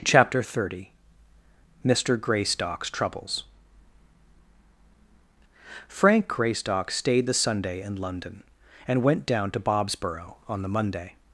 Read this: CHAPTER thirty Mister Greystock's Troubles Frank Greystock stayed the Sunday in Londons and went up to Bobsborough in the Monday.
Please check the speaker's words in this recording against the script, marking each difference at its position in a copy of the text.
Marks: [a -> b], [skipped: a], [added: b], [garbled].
CHAPTER thirty Mister Greystock's Troubles Frank Greystock stayed the Sunday in [Londons -> London] and went [up -> down] to Bobsborough [in -> on] the Monday.